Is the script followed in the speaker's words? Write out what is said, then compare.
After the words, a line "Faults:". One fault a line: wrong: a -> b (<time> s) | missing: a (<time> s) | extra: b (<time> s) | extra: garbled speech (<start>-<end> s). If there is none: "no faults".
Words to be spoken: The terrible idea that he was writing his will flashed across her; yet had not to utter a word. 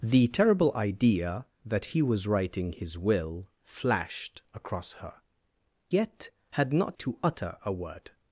The terrible idea that he was writing his will flashed across her; yet had not to utter a word.
Faults:
no faults